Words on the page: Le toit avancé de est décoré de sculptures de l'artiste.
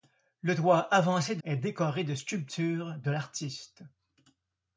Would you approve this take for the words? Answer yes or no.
yes